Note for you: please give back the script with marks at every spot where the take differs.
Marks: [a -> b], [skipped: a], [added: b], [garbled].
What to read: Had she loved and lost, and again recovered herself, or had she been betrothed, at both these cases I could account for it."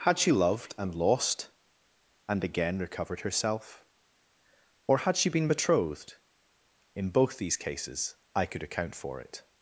Had she loved and lost, and again recovered herself, or had she been betrothed, [at -> in] both these cases I could account for it."